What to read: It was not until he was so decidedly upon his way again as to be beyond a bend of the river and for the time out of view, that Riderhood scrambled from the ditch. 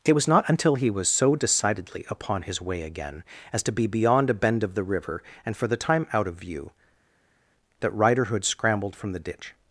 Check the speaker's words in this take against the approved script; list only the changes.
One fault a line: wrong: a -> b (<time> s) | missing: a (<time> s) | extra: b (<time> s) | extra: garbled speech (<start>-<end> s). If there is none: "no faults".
no faults